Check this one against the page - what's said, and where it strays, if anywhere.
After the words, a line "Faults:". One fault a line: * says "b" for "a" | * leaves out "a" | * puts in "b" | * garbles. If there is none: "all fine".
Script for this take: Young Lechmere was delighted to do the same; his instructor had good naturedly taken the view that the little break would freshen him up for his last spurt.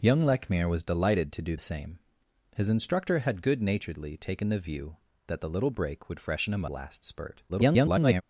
Young Lechmere was delighted to do same; his instructor had good naturedly taken the view that the little break would freshen him last spurt. [garbled]
Faults:
* leaves out "the"
* leaves out "up for his"
* garbles